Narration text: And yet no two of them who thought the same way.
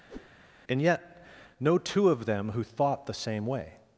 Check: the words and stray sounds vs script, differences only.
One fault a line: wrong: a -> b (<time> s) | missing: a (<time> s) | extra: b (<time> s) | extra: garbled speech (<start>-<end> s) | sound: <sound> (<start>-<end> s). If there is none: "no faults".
sound: whoosh (0.1-0.3 s)